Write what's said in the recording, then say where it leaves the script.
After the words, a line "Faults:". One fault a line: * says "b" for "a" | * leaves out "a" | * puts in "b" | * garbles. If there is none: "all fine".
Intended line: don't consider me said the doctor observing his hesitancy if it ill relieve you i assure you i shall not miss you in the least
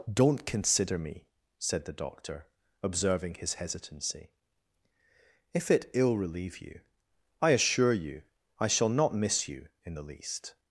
don't consider me said the doctor observing his hesitancy if it ill relieve you i assure you i shall not miss you in the least
Faults:
all fine